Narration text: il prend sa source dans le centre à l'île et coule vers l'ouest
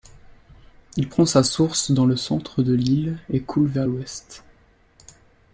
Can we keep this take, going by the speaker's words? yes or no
no